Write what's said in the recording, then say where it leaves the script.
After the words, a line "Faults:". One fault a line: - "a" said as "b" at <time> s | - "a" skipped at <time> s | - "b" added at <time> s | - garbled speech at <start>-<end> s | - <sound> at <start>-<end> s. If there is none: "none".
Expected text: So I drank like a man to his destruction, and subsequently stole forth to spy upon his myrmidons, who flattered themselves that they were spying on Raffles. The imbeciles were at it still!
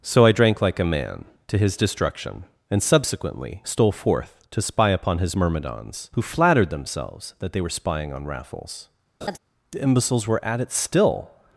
So I drank like a man to his destruction, and subsequently stole forth to spy upon his myrmidons, who flattered themselves that they were spying on Raffles. The imbeciles were at it still!
Faults:
- laugh at 9.2-9.4 s